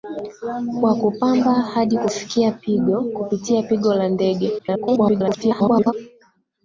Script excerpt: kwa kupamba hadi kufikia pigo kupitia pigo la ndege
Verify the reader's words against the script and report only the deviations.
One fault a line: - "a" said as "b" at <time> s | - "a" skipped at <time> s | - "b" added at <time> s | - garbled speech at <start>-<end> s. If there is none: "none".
- garbled speech at 4.6-5.9 s